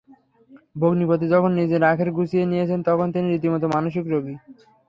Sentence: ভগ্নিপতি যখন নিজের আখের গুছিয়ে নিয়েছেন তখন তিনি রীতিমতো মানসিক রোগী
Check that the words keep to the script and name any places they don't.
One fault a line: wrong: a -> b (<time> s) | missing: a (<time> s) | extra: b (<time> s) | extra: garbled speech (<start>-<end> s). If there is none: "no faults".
no faults